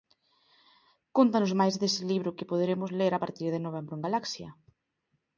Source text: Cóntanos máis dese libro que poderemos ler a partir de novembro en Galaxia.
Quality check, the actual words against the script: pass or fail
pass